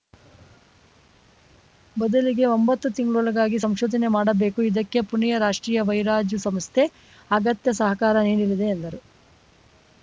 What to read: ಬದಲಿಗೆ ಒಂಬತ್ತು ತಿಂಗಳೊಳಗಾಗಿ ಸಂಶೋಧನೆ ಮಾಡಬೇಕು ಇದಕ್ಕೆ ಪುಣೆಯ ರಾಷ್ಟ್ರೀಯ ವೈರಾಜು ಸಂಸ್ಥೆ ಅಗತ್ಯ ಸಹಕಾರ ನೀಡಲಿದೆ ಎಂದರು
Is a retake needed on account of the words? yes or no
no